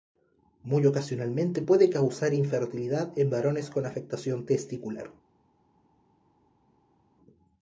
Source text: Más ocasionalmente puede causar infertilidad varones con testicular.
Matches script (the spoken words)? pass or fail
fail